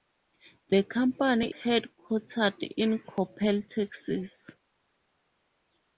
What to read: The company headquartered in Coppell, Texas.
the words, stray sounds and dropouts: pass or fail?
pass